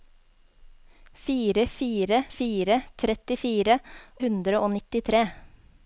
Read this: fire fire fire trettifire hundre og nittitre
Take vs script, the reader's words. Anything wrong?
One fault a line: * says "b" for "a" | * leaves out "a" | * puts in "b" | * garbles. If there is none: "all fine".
all fine